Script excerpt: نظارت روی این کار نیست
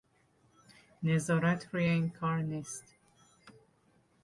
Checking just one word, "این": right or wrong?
right